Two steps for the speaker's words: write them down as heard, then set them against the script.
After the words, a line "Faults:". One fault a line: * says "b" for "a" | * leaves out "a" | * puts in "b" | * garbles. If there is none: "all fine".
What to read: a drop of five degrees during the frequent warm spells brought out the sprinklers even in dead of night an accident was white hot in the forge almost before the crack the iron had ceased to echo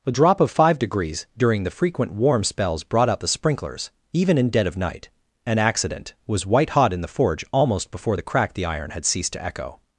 a drop of five degrees during the frequent warm spells brought out the sprinklers even in dead of night an accident was white hot in the forge almost before the crack the iron had ceased to echo
Faults:
all fine